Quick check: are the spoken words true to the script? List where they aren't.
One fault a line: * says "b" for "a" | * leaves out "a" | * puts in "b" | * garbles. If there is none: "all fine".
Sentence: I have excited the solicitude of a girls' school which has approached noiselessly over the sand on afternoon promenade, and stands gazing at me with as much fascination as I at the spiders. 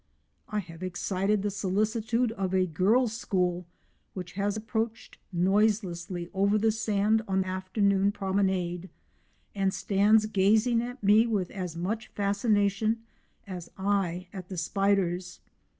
all fine